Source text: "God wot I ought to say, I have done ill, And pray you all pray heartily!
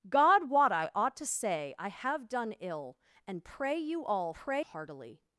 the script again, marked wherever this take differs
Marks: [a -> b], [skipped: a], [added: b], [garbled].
"God wot I ought to say, I have done ill, And pray you all pray heartily!